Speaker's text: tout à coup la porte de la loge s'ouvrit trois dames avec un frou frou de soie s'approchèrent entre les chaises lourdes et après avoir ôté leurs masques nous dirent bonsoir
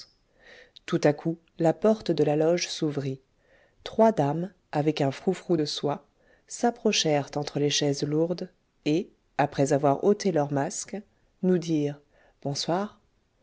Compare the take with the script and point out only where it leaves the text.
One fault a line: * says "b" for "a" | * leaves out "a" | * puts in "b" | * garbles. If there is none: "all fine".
all fine